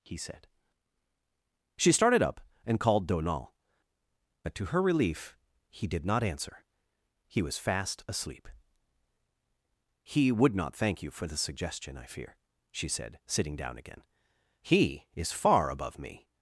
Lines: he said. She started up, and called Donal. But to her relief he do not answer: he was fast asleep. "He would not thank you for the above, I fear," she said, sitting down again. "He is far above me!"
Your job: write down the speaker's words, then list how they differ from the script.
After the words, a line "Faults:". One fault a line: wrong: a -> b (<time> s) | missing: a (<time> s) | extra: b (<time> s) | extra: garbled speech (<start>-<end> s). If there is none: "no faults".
he said. She started up, and called Donal. But to her relief he did not answer: he was fast asleep. "He would not thank you for the suggestion, I fear," she said, sitting down again. "He is far above me!"
Faults:
wrong: do -> did (5.9 s)
wrong: above -> suggestion (11.4 s)